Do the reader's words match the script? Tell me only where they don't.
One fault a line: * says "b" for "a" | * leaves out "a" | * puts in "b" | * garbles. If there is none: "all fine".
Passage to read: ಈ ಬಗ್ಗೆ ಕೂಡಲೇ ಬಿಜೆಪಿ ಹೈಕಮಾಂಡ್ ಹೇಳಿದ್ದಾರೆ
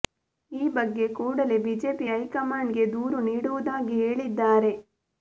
* puts in "ಗೆ ದೂರು ನೀಡುವುದಾಗಿ"